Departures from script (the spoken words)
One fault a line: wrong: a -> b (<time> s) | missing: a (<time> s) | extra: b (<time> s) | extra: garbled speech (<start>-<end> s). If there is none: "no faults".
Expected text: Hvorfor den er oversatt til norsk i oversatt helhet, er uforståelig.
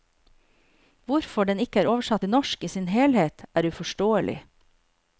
extra: ikke (1.6 s)
wrong: oversatt -> sin (2.7 s)